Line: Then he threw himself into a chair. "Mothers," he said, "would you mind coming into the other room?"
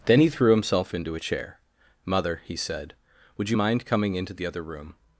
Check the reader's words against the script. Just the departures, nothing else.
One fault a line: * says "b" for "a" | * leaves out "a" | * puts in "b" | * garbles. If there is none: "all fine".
* says "Mother" for "Mothers"